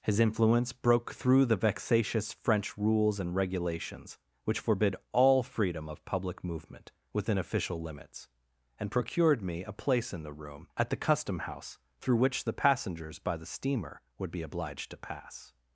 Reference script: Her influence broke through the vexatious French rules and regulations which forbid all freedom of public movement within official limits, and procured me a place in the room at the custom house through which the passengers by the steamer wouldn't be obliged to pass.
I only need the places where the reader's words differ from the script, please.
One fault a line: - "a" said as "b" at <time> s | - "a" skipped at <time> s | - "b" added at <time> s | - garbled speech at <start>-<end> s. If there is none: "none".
- "Her" said as "His" at 0.0 s
- "wouldn't" said as "would" at 14.2 s